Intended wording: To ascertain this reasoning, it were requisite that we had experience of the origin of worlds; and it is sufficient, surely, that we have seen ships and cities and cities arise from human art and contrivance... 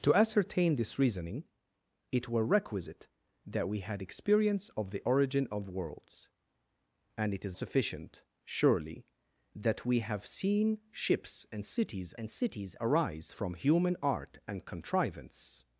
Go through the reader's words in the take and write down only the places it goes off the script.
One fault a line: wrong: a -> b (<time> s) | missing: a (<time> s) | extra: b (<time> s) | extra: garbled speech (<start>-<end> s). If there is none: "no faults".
no faults